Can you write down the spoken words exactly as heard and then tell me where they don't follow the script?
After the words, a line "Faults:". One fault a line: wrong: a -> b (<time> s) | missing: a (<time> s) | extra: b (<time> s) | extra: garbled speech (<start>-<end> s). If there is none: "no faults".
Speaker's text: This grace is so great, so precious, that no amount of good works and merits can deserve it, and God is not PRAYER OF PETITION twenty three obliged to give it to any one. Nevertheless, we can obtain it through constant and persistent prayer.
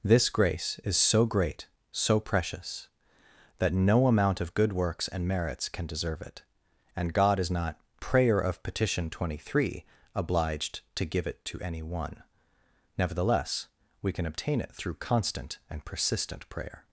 This grace is so great, so precious, that no amount of good works and merits can deserve it, and God is not PRAYER OF PETITION twenty three obliged to give it to any one. Nevertheless, we can obtain it through constant and persistent prayer.
Faults:
no faults